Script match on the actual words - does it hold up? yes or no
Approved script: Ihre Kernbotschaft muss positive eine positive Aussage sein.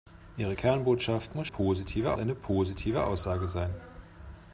yes